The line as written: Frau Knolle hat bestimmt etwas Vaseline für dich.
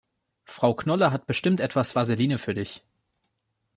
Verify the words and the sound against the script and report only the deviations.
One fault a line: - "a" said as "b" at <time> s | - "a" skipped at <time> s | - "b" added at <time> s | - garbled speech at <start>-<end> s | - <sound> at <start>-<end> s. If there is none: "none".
none